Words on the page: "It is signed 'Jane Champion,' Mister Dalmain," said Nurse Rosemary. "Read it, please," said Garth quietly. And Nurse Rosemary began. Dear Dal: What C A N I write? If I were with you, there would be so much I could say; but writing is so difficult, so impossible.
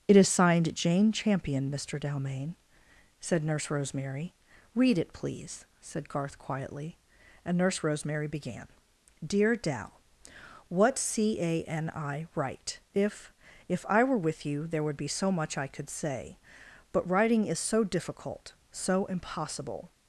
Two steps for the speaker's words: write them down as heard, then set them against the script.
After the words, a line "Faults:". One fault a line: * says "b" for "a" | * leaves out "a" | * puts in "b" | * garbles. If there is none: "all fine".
"It is signed 'Jane Champion,' Mister Dalmain," said Nurse Rosemary. "Read it, please," said Garth quietly. And Nurse Rosemary began. Dear Dal: What C A N I write? If If I were with you, there would be so much I could say; but writing is so difficult, so impossible.
Faults:
* puts in "If"